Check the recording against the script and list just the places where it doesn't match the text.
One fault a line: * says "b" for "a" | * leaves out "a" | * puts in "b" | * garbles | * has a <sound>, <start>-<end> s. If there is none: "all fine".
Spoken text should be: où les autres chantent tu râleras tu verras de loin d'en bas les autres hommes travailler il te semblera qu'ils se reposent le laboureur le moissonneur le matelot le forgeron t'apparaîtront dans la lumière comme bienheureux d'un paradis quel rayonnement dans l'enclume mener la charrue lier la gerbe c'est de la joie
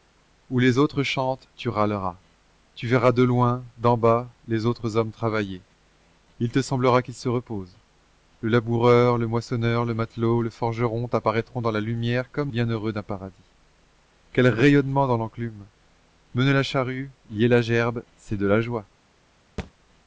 * has a thud, 19.6-19.7 s